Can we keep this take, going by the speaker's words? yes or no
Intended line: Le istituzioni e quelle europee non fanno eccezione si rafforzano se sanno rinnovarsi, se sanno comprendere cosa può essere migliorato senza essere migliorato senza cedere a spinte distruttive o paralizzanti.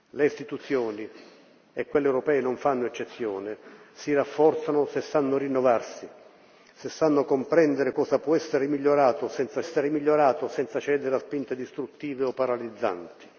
yes